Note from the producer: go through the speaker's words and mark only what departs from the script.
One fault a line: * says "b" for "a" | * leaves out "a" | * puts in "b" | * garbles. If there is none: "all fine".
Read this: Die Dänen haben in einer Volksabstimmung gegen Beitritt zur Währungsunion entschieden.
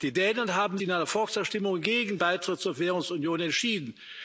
all fine